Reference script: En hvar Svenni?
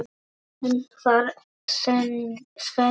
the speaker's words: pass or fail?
pass